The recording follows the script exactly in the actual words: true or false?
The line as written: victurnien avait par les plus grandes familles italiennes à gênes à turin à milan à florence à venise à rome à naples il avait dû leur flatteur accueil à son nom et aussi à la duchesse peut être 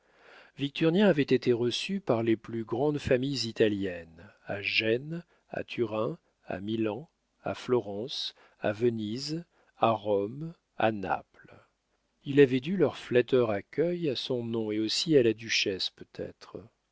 false